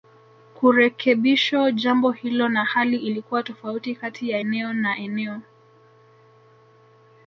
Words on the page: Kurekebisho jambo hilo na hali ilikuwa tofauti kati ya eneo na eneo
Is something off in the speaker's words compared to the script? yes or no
no